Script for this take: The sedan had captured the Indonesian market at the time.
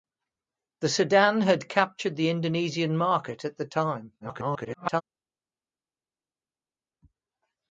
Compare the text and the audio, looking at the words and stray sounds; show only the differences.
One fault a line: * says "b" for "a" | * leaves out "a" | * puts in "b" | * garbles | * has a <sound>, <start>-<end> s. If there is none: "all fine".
* garbles